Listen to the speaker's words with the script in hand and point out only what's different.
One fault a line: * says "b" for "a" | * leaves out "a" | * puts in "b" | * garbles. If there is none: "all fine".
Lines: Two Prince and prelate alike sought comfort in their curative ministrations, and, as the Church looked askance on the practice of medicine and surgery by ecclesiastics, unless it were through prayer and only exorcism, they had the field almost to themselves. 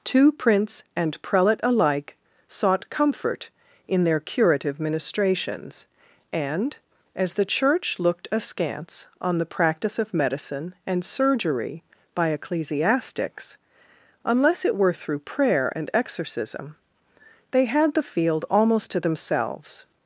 * leaves out "only"